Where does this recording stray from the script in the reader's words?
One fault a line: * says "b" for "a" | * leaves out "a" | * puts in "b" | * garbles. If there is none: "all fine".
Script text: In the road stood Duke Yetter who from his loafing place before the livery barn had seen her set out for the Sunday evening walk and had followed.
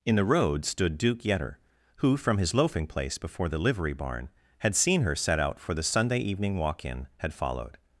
* says "in" for "and"